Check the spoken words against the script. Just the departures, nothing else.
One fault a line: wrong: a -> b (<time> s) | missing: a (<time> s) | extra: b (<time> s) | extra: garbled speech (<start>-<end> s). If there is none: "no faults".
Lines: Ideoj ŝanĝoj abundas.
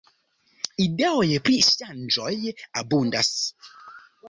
extra: pri (1.5 s)